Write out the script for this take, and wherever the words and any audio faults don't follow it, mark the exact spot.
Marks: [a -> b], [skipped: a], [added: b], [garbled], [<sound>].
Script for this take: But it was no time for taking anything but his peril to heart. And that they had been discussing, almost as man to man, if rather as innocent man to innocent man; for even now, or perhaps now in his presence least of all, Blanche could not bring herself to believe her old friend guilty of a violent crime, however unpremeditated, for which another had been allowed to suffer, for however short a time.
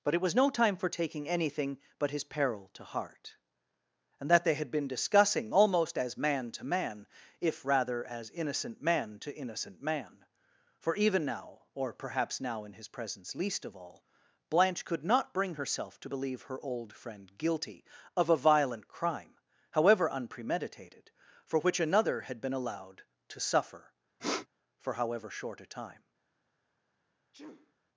But it was no time for taking anything but his peril to heart. And that they had been discussing, almost as man to man, if rather as innocent man to innocent man; for even now, or perhaps now in his presence least of all, Blanche could not bring herself to believe her old friend guilty of a violent crime, however unpremeditated, for which another had been allowed to suffer, [sniff] for however short a time. [sneeze]